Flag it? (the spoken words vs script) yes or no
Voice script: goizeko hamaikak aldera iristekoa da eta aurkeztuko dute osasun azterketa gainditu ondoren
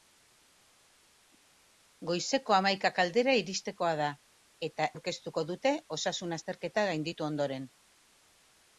no